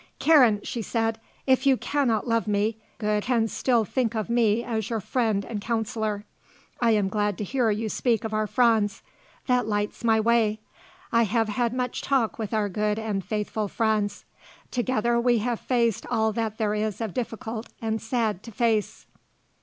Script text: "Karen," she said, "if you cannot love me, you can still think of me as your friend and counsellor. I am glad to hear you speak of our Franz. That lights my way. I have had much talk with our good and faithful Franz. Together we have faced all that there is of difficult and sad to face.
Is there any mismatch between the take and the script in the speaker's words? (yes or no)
yes